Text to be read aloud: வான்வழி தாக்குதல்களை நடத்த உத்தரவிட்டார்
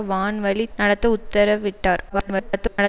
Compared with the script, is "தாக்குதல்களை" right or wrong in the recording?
wrong